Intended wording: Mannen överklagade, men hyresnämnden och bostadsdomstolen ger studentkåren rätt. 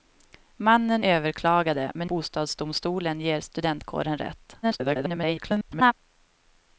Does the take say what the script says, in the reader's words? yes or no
no